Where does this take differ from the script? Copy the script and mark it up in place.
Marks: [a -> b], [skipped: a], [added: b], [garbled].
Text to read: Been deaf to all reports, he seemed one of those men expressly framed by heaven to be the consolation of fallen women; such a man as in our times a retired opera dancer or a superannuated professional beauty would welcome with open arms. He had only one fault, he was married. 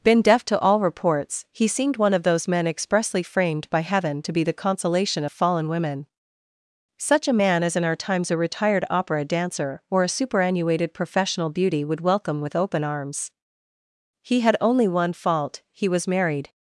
Been deaf to all reports, he seemed one of those men expressly framed by heaven to be the consolation of fallen women; such a man as in our times a retired opera dancer or a superannuated professional beauty would welcome with open arms. He had only one fault, he was married.